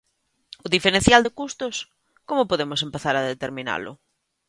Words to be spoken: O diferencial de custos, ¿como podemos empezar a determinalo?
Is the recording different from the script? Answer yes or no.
no